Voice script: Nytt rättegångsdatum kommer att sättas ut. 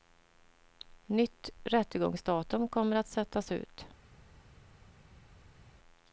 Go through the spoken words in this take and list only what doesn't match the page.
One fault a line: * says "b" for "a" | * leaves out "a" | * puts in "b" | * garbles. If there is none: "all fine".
all fine